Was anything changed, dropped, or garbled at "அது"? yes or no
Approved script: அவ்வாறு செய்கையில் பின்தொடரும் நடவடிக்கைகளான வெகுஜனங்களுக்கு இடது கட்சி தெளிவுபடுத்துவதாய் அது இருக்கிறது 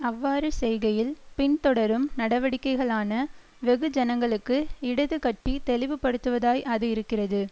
no